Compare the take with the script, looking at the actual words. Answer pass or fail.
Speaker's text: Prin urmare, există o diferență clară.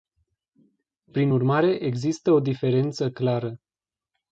pass